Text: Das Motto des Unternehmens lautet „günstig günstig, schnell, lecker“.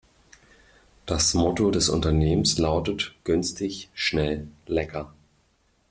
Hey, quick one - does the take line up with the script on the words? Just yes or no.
no